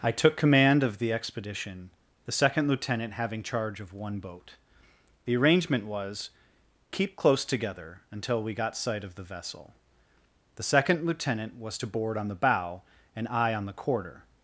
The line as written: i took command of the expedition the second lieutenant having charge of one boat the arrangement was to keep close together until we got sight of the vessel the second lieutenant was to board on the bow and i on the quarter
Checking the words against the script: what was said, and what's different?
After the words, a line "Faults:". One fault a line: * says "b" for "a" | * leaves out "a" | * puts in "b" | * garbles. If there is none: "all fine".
i took command of the expedition the second lieutenant having charge of one boat the arrangement was keep close together until we got sight of the vessel the second lieutenant was to board on the bow and i on the quarter
Faults:
* leaves out "to"